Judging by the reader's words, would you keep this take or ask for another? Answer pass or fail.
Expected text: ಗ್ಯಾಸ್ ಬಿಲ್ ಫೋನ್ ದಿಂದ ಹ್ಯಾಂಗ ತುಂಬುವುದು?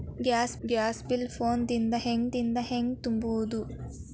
fail